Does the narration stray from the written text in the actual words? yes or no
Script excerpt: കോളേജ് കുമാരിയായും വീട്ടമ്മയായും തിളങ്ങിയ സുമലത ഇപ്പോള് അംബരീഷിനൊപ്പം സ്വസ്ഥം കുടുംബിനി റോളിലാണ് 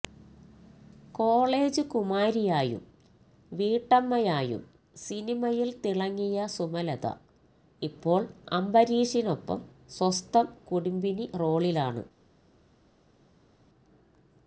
yes